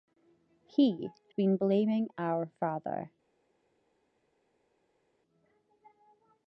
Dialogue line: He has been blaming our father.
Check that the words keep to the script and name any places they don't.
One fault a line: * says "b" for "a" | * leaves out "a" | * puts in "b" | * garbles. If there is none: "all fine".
* leaves out "has"